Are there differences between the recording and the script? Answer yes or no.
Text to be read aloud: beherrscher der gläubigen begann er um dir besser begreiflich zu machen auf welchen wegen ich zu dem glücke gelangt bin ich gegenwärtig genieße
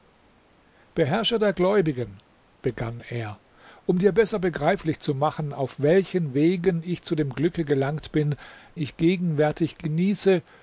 no